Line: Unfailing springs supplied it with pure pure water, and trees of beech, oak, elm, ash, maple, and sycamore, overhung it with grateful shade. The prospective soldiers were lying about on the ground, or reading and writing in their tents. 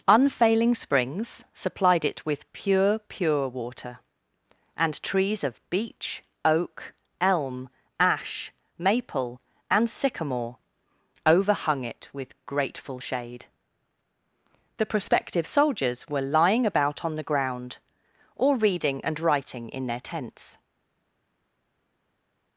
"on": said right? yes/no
yes